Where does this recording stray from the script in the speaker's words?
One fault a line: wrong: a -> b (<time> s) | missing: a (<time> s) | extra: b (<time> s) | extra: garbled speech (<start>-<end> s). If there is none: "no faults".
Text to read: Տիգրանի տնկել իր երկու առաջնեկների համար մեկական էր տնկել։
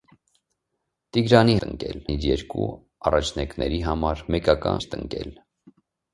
no faults